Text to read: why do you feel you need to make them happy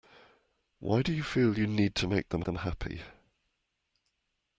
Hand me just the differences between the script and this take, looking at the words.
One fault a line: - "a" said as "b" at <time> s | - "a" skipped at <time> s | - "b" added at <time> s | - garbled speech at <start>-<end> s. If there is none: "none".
- "them" added at 2.4 s